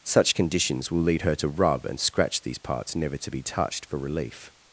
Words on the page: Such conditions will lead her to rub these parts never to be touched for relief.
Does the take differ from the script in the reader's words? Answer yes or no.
yes